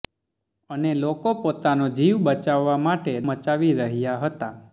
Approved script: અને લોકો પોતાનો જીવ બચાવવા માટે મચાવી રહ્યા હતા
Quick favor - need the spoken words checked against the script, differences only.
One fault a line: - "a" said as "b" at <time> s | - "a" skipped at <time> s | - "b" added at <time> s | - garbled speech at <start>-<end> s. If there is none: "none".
none